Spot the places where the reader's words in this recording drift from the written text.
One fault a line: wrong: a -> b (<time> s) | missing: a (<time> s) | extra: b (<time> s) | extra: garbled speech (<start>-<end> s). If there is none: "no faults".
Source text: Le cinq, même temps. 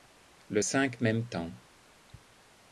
no faults